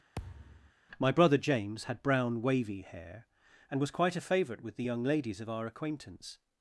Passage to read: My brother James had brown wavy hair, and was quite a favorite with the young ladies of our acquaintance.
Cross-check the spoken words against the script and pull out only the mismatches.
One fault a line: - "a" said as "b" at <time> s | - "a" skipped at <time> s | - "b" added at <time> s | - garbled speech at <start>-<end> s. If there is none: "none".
none